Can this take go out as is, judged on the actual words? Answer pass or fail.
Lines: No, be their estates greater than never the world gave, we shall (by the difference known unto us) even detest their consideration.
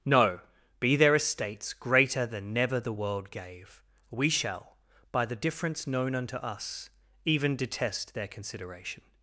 pass